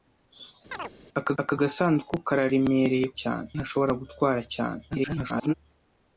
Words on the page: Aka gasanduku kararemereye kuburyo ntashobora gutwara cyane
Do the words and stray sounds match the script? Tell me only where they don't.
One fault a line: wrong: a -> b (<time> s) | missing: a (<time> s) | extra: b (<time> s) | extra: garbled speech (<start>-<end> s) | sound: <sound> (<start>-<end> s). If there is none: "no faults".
sound: chirp (0.7-0.9 s)
extra: aka (1.4 s)
wrong: kuburyo -> cyane (3.2 s)
extra: garbled speech (4.9-5.5 s)